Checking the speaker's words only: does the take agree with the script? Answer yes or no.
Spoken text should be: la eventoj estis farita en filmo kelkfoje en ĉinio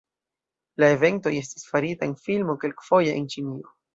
yes